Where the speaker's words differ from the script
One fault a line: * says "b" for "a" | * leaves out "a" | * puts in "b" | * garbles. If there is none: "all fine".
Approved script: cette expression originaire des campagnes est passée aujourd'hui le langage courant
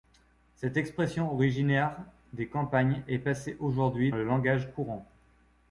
all fine